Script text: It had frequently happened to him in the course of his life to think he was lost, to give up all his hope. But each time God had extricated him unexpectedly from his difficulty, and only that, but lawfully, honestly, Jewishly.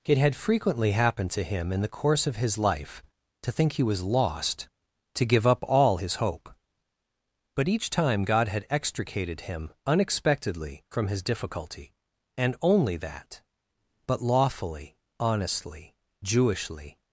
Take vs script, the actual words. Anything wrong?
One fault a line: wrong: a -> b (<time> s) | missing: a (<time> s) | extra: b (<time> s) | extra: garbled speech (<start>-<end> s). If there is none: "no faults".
no faults